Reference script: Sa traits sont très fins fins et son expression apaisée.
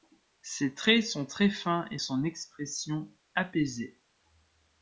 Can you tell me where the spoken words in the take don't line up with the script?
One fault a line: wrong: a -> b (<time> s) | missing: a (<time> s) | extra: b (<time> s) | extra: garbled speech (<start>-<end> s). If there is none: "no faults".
wrong: Sa -> Ses (0.4 s)
missing: fins (1.9 s)